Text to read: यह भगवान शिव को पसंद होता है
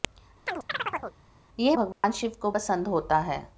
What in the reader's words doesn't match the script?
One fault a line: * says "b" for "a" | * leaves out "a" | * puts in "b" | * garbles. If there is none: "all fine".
all fine